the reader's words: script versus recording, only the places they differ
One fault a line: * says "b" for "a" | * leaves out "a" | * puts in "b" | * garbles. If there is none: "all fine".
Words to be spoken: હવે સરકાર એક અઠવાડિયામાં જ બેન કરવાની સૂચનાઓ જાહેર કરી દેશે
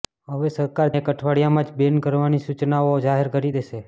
all fine